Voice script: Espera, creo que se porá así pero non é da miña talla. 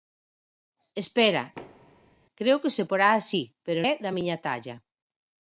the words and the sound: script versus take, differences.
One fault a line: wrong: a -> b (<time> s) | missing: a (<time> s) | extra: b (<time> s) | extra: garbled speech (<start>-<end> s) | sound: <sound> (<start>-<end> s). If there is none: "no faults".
sound: thud (1.6-2.2 s)
missing: non (3.8 s)